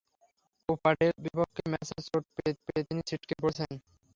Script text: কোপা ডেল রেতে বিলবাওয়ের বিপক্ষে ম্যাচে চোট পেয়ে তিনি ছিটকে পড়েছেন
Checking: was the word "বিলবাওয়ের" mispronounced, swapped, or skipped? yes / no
yes